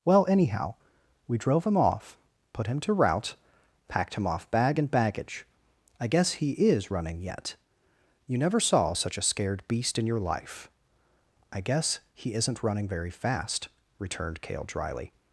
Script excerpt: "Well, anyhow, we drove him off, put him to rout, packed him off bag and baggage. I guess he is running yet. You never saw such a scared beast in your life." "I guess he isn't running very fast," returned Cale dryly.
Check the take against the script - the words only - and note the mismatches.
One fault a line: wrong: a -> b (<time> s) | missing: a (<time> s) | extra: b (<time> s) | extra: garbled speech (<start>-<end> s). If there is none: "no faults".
no faults